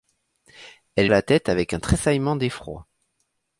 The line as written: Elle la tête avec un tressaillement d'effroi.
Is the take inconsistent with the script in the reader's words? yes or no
no